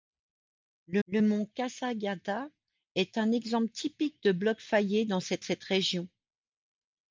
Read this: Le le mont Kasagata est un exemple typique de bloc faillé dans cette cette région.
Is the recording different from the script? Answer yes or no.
no